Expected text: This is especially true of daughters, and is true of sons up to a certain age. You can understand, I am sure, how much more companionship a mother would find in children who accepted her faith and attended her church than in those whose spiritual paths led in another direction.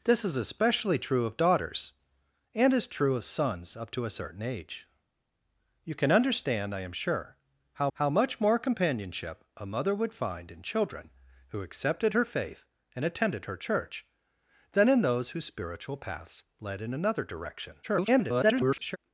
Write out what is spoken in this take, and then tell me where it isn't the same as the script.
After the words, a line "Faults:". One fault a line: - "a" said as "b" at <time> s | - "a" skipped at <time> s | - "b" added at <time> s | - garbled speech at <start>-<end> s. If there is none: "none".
This is especially true of daughters, and is true of sons up to a certain age. You can understand, I am sure, how how much more companionship a mother would find in children who accepted her faith and attended her church than in those whose spiritual paths led in another direction. [garbled]
Faults:
- "how" added at 7.9 s
- garbled speech at 17.8-19.0 s